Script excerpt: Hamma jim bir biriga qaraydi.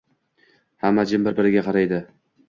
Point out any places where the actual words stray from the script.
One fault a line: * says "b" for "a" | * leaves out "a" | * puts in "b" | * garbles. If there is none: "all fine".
all fine